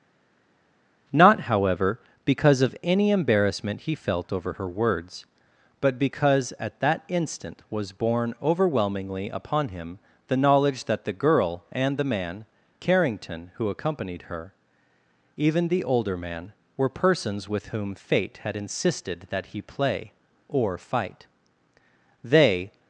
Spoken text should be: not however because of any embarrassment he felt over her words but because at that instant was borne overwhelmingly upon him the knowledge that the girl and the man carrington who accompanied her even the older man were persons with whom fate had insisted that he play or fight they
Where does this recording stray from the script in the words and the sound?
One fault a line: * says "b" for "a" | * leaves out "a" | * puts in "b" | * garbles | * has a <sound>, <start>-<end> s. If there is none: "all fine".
all fine